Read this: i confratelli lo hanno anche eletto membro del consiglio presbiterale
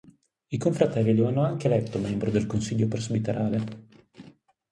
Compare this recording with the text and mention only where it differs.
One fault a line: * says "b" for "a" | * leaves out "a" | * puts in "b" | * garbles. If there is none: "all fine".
all fine